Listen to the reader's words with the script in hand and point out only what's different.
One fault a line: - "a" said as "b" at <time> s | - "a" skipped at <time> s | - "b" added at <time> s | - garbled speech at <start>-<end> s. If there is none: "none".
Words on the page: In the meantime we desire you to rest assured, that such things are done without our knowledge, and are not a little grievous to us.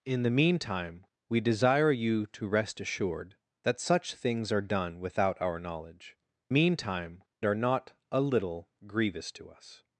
- "and" said as "meantime" at 6.5 s